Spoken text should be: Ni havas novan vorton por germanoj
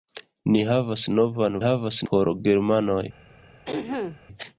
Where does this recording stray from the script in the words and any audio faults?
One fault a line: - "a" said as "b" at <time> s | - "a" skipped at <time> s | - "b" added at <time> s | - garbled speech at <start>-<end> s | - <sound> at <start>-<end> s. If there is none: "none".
- "vorton" said as "havas" at 1.6 s
- throat clearing at 3.7-4.2 s